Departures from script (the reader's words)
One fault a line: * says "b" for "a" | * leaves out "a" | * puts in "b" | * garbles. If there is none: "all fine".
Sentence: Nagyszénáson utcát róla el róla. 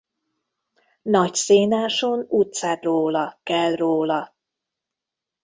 all fine